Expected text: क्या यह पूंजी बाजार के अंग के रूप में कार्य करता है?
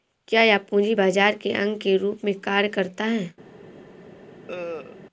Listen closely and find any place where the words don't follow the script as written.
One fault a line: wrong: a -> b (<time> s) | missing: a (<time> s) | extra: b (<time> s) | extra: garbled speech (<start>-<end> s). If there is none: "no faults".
no faults